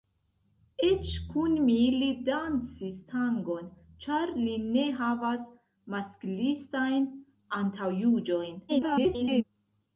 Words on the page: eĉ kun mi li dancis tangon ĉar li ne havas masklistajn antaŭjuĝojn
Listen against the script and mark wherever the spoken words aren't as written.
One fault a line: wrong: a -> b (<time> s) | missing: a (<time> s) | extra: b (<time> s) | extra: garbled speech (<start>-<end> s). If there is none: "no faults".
extra: garbled speech (8.7-9.4 s)